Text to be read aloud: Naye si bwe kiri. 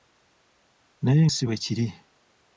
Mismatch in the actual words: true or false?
false